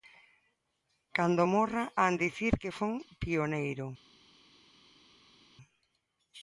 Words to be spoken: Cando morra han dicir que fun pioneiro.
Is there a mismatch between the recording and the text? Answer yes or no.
no